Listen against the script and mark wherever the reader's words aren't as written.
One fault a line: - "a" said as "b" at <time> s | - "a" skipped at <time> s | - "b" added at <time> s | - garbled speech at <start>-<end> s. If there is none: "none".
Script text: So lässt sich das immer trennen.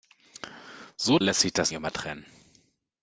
none